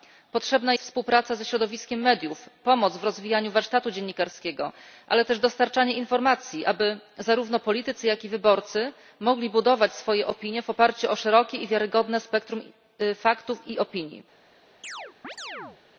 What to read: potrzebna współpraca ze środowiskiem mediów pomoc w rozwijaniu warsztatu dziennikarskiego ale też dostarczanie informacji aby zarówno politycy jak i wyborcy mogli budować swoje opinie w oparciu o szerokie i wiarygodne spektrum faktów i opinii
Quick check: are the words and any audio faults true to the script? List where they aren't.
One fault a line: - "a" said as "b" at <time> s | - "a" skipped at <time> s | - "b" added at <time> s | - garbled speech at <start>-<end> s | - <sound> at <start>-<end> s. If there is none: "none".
- chirp at 14.8-15.8 s